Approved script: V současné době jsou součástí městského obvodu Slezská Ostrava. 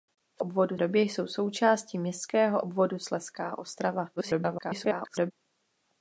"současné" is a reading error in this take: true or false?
true